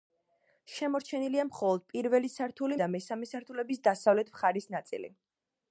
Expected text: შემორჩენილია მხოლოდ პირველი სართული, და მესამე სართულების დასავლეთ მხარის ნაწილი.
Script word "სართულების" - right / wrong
right